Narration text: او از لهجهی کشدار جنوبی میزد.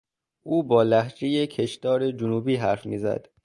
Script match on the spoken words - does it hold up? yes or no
no